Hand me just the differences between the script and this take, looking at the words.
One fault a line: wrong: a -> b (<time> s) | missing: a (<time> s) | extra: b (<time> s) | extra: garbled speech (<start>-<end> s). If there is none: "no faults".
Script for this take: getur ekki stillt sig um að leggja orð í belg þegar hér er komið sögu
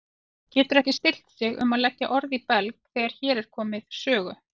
no faults